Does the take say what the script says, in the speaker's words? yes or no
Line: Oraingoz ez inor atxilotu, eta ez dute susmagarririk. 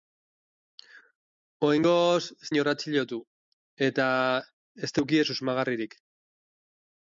yes